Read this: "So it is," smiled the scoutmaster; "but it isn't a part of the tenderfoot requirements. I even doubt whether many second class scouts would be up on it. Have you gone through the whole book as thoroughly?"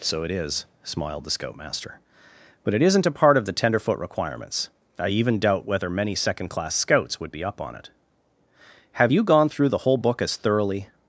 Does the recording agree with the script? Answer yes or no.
yes